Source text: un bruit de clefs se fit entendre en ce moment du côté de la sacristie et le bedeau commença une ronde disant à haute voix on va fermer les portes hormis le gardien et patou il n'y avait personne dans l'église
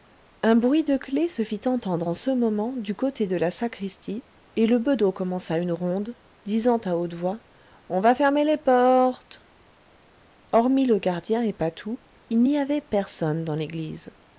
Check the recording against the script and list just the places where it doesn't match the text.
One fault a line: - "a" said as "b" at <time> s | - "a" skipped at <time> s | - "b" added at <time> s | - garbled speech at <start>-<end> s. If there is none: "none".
none